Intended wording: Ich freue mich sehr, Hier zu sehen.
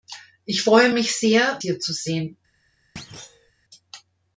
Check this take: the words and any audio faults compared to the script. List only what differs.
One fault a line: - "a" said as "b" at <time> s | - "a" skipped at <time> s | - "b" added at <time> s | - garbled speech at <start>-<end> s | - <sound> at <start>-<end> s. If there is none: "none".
- thud at 3.0-3.5 s